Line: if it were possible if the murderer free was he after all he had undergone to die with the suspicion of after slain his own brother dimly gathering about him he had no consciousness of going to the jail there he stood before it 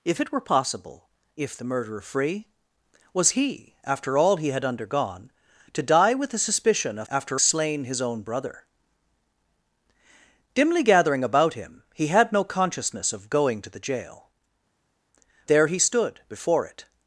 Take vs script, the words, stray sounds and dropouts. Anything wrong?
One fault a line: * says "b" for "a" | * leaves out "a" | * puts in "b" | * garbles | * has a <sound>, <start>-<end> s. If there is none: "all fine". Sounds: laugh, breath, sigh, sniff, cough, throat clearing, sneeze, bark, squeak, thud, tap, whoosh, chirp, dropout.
all fine